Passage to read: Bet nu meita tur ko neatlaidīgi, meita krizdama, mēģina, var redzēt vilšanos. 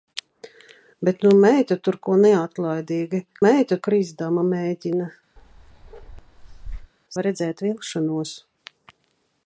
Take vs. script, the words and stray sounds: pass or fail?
fail